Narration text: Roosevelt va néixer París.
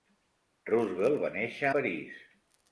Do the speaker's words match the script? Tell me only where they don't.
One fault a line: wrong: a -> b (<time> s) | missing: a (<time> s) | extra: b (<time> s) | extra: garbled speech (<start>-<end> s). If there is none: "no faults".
no faults